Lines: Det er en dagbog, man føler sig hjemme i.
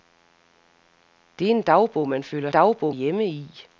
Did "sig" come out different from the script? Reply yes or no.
yes